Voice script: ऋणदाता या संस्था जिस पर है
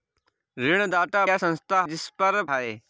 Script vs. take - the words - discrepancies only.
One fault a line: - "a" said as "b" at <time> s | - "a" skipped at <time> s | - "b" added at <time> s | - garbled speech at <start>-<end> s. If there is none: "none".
none